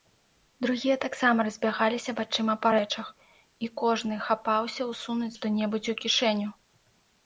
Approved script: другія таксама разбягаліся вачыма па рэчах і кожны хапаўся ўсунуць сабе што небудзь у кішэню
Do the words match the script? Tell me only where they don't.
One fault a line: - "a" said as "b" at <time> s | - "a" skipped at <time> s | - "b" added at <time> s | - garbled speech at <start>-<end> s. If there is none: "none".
- "сабе" skipped at 5.3 s